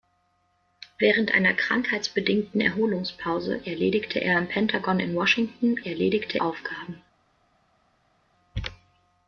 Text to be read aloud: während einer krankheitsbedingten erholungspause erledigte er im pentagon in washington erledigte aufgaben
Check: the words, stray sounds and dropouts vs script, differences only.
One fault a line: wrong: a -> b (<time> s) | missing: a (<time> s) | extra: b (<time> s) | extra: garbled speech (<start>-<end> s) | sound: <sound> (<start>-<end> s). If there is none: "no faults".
no faults